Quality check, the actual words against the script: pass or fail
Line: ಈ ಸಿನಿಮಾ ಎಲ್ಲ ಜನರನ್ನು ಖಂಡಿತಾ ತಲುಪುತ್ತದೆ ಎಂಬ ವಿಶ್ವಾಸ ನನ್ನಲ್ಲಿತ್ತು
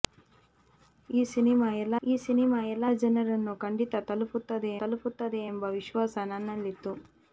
fail